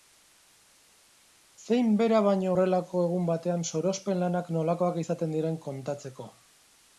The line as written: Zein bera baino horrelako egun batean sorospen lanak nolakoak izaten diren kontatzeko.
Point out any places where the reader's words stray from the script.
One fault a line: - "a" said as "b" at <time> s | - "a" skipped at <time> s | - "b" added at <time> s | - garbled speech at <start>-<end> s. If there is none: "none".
none